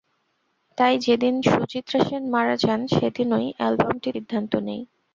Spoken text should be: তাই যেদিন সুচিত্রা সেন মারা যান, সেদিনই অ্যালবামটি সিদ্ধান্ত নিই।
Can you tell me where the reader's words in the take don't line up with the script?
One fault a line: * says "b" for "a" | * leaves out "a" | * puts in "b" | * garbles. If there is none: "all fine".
all fine